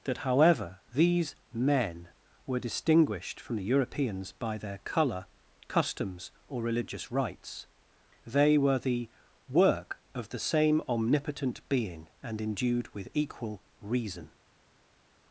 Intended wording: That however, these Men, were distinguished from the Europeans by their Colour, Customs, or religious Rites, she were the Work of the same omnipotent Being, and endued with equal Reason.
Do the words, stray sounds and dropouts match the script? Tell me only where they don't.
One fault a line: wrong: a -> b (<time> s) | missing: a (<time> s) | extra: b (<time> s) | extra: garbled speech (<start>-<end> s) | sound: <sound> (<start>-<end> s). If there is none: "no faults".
wrong: she -> they (8.2 s)